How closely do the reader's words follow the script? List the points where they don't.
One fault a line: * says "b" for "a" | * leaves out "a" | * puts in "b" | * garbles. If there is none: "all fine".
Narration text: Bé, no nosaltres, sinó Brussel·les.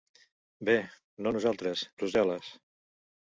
* leaves out "sinó"